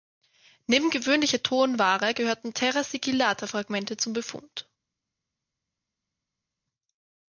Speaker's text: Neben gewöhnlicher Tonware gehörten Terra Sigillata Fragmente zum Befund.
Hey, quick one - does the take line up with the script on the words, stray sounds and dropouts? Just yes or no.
yes